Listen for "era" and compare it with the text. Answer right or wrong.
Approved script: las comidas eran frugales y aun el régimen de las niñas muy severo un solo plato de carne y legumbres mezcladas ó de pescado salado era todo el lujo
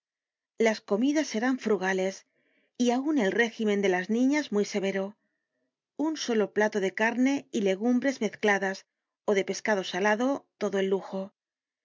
wrong